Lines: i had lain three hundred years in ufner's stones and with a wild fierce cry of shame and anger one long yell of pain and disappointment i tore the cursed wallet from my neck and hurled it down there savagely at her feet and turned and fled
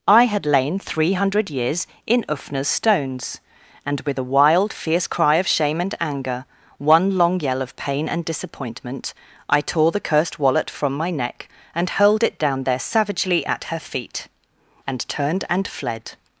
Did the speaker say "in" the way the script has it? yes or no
yes